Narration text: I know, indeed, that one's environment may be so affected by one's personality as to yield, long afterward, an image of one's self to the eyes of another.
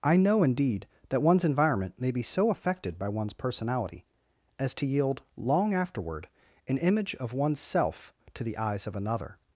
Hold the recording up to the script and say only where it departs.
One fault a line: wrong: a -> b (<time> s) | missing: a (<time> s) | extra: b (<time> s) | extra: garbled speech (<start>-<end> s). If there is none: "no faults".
no faults